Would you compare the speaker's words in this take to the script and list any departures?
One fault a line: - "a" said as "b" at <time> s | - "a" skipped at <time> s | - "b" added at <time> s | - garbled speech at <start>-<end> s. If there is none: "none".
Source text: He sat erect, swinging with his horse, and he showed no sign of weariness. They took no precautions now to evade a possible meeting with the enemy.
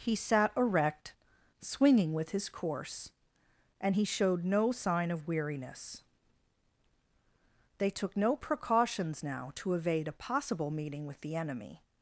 - "horse" said as "course" at 2.5 s